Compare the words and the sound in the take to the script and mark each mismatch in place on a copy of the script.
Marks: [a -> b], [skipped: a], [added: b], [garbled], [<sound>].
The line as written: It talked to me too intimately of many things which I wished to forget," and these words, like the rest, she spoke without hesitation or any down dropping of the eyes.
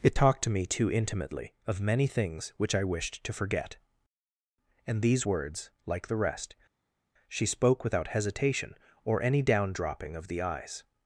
It talked to me too intimately of many things which I wished to forget," and these words, like the rest, she spoke without hesitation or any down dropping of the eyes.